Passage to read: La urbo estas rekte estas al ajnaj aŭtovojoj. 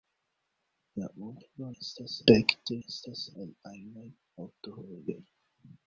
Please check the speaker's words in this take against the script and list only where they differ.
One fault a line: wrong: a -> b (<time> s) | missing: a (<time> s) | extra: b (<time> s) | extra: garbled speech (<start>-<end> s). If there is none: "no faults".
no faults